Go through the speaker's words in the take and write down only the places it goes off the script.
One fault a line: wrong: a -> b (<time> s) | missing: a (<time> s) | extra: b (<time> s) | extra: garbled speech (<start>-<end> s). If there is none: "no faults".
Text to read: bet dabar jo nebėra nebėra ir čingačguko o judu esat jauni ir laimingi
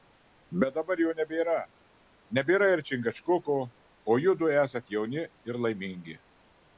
no faults